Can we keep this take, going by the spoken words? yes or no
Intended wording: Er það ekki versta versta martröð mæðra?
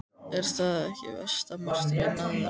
no